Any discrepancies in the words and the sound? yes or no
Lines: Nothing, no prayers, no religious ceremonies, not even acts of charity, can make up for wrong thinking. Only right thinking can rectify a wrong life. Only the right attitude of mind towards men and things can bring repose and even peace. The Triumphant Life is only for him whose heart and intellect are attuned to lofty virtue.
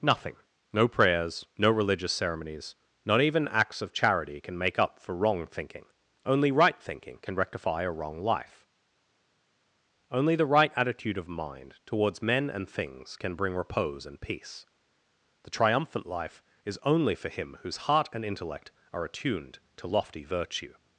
yes